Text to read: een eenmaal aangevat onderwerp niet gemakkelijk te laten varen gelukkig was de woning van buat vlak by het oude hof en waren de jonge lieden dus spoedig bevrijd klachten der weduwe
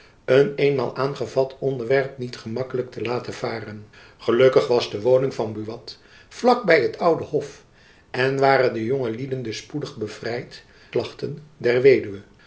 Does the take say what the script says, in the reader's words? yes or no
yes